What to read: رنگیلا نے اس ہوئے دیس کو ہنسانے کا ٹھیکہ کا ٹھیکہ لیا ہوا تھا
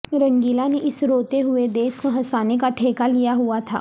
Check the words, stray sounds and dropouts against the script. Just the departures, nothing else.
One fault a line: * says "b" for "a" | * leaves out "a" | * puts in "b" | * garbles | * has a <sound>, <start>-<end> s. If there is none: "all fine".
* puts in "روتے"
* leaves out "کا ٹھیکہ"